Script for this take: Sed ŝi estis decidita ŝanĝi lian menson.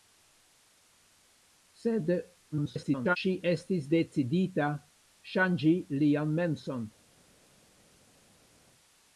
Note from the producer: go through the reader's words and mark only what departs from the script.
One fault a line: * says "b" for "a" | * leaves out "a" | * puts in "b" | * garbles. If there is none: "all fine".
* garbles